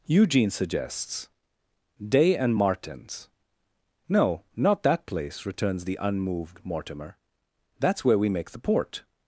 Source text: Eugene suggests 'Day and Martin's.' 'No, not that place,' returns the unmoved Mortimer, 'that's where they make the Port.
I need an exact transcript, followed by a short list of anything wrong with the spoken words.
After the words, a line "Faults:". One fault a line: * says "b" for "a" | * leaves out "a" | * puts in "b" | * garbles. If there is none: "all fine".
Eugene suggests 'Day and Martin's.' 'No, not that place,' returns the unmoved Mortimer, 'that's where we make the Port.
Faults:
* says "we" for "they"